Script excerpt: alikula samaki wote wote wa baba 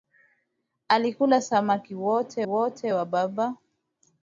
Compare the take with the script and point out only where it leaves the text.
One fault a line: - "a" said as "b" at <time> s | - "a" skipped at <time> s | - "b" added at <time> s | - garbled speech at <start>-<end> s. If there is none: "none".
none